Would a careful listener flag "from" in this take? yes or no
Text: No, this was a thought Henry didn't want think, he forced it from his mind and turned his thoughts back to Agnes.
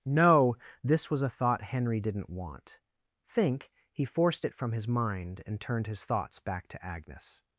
no